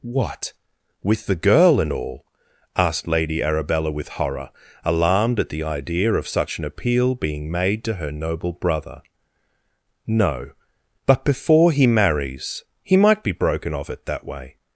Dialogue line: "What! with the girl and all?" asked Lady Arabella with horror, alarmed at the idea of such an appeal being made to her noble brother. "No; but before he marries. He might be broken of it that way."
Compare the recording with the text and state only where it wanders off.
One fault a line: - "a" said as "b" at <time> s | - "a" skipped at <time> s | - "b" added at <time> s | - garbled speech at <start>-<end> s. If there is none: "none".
none